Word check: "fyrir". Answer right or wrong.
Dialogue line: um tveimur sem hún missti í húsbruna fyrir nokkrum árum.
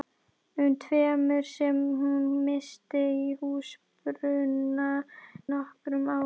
wrong